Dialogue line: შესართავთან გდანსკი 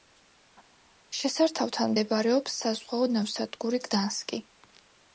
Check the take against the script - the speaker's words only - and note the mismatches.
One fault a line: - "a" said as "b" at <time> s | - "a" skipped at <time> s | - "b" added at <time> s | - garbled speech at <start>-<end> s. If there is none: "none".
- "მდებარეობს საზღვაო ნავსადგური" added at 1.9 s